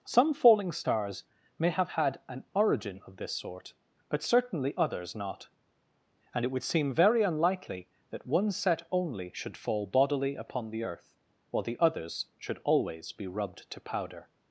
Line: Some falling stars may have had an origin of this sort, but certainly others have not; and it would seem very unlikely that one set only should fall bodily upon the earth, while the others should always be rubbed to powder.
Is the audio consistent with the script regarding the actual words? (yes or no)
no